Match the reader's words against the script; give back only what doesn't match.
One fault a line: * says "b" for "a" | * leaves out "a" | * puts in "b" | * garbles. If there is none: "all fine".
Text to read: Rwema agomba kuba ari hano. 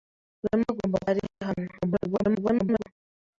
* leaves out "kuba"
* garbles